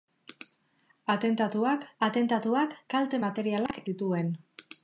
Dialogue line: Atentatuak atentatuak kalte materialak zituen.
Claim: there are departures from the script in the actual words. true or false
false